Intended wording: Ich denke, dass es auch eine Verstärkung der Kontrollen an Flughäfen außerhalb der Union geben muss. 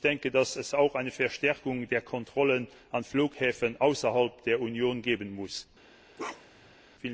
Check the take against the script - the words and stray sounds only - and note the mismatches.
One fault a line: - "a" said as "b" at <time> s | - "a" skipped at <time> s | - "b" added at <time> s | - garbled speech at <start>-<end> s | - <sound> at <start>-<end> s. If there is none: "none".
- bark at 6.2-6.8 s